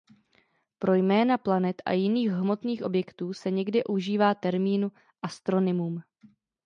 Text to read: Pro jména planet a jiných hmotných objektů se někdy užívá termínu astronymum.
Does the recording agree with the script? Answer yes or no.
yes